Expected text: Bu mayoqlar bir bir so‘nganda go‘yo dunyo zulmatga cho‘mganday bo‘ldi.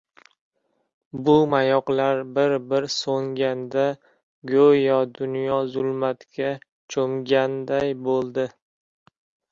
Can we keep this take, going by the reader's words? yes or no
yes